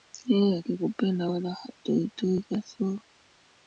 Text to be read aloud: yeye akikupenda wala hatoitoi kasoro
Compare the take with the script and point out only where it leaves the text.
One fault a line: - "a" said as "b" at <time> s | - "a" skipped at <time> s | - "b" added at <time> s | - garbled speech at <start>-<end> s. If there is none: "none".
none